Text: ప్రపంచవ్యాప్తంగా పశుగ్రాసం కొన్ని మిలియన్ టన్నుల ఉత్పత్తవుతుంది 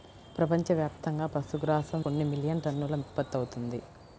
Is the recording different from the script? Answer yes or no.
no